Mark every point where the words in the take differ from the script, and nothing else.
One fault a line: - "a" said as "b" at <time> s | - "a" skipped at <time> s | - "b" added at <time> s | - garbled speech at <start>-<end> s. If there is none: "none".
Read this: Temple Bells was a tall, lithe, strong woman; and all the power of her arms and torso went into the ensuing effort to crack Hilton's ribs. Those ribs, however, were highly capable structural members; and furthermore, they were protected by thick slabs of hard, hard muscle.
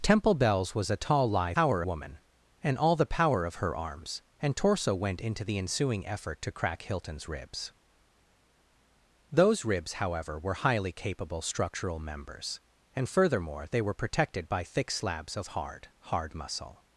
- "strong" said as "power" at 1.5 s